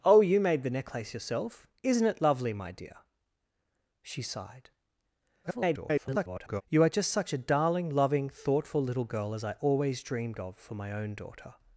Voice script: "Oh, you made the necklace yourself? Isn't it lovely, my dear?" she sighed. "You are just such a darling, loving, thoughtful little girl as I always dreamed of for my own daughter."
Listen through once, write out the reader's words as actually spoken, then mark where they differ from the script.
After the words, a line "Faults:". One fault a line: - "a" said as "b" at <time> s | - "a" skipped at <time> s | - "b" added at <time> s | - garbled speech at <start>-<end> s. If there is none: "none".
"Oh, you made the necklace yourself? Isn't it lovely, my dear?" she sighed. [garbled] "You are just such a darling, loving, thoughtful little girl as I always dreamed of for my own daughter."
Faults:
- garbled speech at 5.4-6.6 s